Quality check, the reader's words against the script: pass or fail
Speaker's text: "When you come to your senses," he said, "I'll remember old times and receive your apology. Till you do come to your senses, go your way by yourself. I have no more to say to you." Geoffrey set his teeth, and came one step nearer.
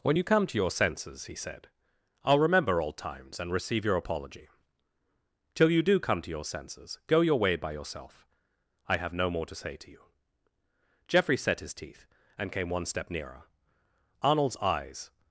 fail